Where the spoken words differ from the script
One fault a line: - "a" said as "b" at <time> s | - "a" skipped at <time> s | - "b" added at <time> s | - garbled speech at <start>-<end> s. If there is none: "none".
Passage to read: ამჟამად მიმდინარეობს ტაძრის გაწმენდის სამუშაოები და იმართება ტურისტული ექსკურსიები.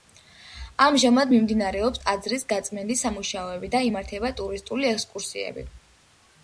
none